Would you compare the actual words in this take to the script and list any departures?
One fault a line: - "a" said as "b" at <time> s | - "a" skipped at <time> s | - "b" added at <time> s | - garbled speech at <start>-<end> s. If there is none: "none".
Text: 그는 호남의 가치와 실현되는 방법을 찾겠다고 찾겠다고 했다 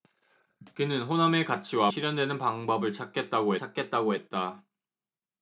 none